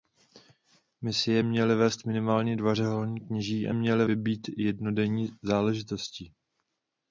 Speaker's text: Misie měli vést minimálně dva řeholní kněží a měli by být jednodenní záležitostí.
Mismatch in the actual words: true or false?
false